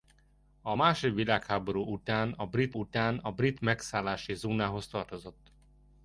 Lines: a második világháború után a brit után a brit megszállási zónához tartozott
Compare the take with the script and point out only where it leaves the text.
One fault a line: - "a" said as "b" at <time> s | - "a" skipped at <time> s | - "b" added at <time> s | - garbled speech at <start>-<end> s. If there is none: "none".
none